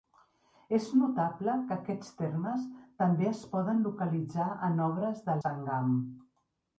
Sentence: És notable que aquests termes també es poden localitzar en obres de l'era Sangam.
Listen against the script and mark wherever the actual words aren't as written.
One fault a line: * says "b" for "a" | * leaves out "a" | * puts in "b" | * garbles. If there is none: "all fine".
* leaves out "l'era"